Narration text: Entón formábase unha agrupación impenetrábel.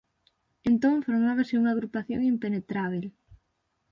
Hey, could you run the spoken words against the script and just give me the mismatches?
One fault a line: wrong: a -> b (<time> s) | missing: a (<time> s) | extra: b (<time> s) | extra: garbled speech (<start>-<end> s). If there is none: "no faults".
no faults